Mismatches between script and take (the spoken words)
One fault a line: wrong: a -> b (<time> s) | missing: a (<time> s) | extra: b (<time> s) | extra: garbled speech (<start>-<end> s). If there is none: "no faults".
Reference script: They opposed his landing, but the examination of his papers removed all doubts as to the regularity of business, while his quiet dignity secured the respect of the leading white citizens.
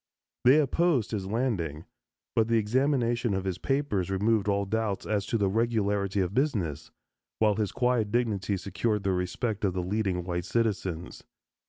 no faults